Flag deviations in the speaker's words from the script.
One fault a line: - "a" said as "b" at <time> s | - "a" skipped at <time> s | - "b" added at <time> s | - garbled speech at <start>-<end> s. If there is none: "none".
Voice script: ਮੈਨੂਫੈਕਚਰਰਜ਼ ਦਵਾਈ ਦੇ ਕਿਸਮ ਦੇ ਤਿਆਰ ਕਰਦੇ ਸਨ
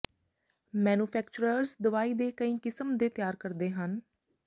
- "ਕਈ" added at 2.3 s
- "ਸਨ" said as "ਹਨ" at 3.7 s